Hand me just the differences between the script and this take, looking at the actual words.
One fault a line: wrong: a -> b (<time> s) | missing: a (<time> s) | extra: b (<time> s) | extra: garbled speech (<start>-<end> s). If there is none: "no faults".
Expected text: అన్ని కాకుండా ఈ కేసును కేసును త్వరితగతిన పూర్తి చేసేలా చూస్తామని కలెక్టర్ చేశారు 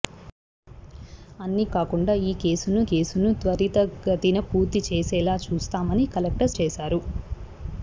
no faults